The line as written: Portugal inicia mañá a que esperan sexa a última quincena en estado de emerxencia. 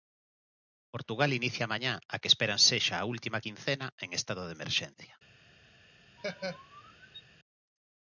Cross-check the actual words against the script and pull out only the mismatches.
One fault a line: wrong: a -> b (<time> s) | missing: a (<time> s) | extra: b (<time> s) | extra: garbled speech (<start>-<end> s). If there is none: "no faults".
no faults